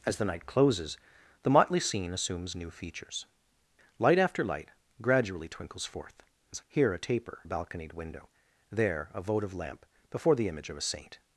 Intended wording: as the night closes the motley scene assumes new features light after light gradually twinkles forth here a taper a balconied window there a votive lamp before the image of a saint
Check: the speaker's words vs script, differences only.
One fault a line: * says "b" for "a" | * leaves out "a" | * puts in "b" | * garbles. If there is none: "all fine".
all fine